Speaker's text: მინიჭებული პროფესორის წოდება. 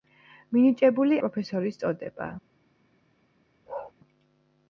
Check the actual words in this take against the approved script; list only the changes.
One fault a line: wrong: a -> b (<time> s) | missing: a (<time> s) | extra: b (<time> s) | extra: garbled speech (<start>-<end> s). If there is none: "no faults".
no faults